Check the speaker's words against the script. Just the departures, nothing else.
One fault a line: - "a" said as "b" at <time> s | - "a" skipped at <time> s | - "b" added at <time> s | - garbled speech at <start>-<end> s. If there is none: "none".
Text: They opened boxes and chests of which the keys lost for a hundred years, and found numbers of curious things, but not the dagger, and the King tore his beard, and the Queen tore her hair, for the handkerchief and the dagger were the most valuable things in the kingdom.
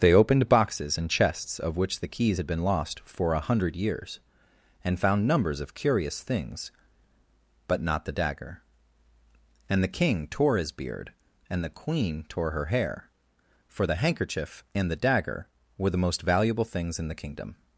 - "had been" added at 2.4 s